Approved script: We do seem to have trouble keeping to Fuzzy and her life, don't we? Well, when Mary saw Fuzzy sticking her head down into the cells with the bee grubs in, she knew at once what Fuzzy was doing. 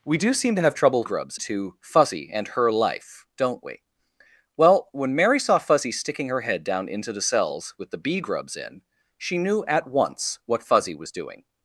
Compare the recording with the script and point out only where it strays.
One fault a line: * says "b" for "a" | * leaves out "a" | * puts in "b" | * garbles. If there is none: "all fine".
* says "grubs" for "keeping"